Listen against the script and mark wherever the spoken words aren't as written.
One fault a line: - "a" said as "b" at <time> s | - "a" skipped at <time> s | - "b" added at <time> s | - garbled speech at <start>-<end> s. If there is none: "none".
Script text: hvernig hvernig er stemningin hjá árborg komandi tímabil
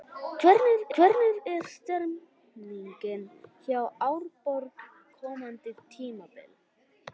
none